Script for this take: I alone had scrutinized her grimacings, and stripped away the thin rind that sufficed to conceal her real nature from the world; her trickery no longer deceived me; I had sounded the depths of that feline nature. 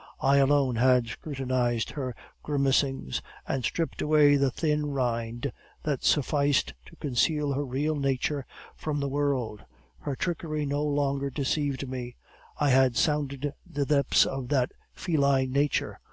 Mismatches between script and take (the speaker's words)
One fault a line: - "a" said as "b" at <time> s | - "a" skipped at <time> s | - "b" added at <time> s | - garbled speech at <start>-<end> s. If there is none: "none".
none